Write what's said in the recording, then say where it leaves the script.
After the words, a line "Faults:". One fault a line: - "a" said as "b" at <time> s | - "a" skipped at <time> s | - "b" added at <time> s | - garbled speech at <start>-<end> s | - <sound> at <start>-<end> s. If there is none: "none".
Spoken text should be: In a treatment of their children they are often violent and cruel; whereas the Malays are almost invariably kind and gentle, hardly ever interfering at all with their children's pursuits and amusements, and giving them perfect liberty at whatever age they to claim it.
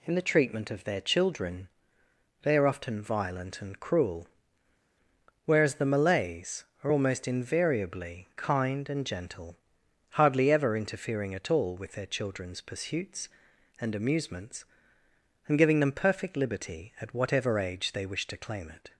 In the treatment of their children they are often violent and cruel; whereas the Malays are almost invariably kind and gentle, hardly ever interfering at all with their children's pursuits and amusements, and giving them perfect liberty at whatever age they wish to claim it.
Faults:
- "a" said as "the" at 0.1 s
- "wish" added at 18.0 s